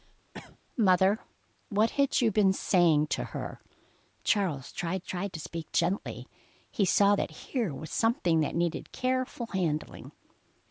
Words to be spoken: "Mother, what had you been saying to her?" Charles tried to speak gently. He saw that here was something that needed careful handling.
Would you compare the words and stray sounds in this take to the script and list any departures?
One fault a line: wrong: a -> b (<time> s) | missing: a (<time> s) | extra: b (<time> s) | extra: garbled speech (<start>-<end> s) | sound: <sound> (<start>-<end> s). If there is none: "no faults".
sound: cough (0.3-0.6 s)
extra: tried (5.0 s)